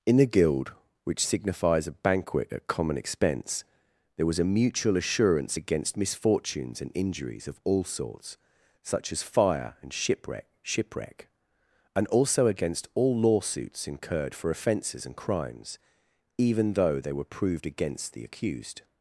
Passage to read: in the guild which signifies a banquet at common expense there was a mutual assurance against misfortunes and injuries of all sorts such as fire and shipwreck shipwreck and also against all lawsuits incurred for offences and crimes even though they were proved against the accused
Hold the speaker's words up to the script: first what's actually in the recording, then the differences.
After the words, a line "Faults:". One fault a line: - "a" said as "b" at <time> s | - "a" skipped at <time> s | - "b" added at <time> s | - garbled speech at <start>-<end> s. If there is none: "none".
in the guild which signifies a banquet at common expense there was a mutual assurance against misfortunes and injuries of all sorts such as fire and shipwreck shipwreck and also against all lawsuits incurred for offences and crimes even though they were proved against the accused
Faults:
none